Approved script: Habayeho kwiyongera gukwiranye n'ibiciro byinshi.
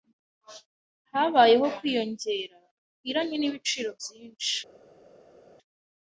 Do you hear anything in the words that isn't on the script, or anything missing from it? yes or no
no